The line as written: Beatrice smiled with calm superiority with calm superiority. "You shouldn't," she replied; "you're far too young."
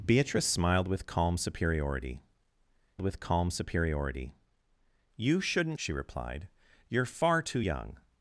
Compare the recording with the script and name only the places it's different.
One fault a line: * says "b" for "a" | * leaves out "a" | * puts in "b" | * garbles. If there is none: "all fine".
all fine